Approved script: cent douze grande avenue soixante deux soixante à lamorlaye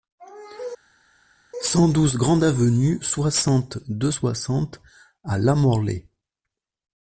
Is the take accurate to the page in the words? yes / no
yes